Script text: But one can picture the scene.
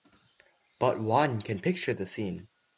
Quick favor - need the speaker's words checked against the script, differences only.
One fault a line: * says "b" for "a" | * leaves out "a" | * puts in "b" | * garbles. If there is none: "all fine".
all fine